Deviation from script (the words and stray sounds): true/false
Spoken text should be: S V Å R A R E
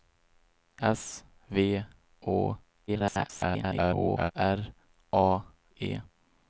true